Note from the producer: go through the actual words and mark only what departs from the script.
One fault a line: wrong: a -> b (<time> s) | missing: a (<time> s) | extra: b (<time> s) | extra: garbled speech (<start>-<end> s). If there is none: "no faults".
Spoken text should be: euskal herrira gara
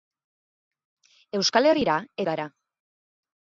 no faults